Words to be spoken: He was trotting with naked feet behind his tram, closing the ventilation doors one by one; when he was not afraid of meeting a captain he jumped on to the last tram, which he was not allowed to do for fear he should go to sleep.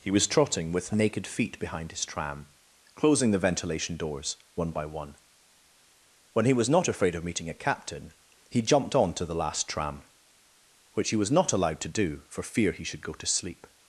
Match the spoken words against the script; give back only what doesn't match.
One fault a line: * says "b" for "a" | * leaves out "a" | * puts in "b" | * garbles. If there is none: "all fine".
all fine